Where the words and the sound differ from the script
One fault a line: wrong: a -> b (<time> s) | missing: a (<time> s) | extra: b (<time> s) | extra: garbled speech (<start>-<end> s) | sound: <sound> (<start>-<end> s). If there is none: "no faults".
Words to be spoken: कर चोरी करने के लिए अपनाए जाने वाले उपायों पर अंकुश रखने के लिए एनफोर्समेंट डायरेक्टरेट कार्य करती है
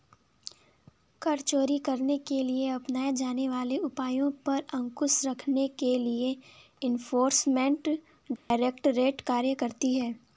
sound: dropout (8.4-8.5 s)